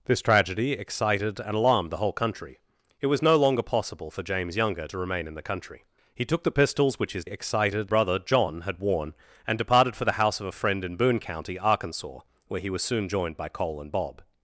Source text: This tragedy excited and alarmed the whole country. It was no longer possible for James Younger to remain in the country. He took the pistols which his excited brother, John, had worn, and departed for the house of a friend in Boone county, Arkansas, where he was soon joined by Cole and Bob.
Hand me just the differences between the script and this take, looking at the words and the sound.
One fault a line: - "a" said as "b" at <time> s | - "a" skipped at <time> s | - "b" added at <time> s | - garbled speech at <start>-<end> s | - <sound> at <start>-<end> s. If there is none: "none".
none